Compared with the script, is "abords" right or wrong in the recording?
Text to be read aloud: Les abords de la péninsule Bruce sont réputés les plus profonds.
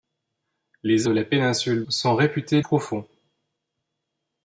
wrong